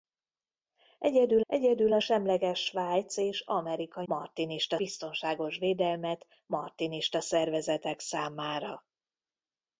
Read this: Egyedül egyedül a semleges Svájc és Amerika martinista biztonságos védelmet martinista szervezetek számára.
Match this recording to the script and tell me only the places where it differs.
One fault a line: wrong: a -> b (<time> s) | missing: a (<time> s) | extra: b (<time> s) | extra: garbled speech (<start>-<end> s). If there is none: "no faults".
no faults